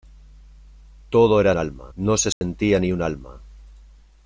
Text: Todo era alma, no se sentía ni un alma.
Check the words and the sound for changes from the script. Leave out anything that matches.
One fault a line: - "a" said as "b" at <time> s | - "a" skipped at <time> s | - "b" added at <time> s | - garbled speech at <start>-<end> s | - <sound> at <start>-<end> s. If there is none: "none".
- dropout at 2.3-2.4 s